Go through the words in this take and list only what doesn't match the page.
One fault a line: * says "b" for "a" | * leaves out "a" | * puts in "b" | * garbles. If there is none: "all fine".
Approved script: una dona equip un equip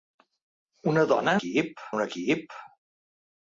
all fine